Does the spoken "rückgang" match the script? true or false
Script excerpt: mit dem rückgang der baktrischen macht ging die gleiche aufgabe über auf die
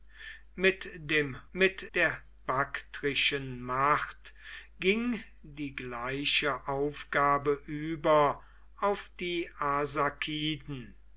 false